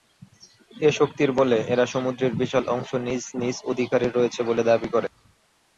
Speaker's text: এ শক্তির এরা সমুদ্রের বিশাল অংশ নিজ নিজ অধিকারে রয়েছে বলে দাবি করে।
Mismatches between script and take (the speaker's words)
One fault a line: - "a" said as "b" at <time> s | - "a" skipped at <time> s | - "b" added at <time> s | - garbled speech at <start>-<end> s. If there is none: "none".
- "বলে" added at 1.4 s